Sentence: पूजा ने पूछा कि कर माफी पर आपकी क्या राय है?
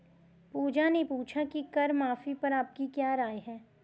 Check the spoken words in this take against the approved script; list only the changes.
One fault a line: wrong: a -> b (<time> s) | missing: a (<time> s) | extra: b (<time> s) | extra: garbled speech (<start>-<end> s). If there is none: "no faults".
no faults